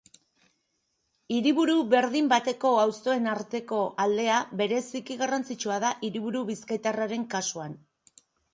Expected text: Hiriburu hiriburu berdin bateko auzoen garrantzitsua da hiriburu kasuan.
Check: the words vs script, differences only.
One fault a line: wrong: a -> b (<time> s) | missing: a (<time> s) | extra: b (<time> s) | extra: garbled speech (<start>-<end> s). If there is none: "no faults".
missing: hiriburu (1.8 s)
extra: arteko aldea bereziki (3.4 s)
extra: bizkaitarraren (6.5 s)